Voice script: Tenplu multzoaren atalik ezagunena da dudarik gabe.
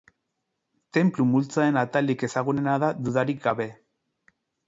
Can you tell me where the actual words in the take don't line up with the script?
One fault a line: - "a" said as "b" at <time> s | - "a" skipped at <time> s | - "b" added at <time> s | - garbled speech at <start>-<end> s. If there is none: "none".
none